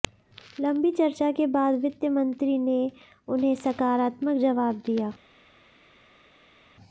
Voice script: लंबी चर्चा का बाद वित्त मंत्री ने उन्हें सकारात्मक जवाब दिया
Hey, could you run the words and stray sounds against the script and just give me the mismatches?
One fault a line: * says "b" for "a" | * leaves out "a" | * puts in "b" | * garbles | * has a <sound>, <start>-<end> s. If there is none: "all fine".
* says "के" for "का"